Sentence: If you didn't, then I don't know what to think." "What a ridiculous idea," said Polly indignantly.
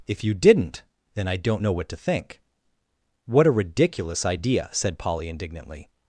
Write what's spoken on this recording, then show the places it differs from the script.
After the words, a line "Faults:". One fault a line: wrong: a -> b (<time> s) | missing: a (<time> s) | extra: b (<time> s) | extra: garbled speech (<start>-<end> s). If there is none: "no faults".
If you didn't, then I don't know what to think." "What a ridiculous idea," said Polly indignantly.
Faults:
no faults